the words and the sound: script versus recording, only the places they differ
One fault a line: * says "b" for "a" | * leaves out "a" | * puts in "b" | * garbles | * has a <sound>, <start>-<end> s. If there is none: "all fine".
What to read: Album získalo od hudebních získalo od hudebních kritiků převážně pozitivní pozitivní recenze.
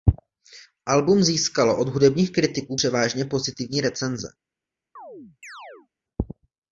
* leaves out "získalo od hudebních"
* leaves out "pozitivní"
* has a chirp, 5.0-5.9 s